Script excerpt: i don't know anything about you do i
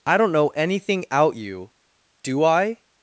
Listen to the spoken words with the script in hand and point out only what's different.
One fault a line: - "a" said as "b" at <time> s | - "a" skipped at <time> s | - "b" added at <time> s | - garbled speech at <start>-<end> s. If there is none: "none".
- "about" said as "out" at 1.1 s